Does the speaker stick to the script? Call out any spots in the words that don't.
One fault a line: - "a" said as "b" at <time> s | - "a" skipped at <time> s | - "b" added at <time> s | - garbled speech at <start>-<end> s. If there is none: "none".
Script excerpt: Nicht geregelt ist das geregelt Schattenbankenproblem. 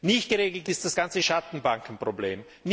- "geregelt" said as "ganze" at 0.9 s